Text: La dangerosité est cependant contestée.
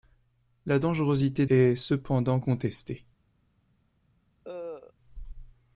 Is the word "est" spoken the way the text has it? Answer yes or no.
yes